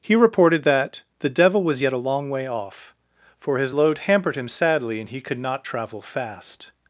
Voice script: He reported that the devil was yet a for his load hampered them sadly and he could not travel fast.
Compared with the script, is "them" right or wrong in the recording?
wrong